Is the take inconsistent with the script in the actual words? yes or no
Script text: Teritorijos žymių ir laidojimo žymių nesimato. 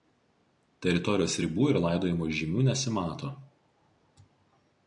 yes